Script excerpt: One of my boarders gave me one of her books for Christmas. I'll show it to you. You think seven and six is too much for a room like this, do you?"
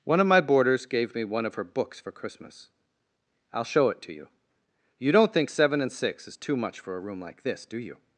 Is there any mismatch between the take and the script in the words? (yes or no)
yes